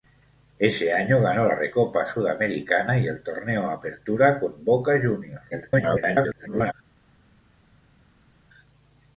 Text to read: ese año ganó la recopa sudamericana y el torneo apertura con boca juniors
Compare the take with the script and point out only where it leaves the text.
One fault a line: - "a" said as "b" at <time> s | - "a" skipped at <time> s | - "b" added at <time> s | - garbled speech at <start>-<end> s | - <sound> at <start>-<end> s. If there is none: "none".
- garbled speech at 5.5-6.7 s